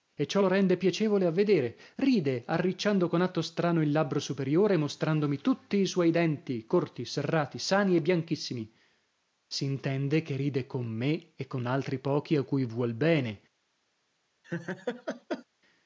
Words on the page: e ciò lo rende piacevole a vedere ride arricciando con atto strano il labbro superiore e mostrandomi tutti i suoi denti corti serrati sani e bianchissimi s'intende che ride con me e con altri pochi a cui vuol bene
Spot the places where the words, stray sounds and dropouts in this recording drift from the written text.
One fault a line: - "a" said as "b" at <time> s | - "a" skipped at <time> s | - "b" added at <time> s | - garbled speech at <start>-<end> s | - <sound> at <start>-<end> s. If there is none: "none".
- laugh at 14.4-15.5 s